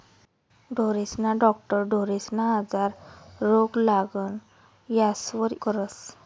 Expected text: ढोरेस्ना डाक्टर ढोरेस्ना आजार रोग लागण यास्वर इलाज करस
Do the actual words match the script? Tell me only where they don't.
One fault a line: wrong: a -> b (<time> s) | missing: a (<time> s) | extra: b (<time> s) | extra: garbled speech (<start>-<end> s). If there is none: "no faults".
missing: इलाज (5.5 s)